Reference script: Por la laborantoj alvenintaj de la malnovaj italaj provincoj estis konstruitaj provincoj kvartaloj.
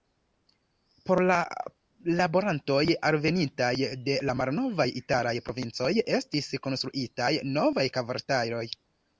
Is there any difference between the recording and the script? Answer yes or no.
yes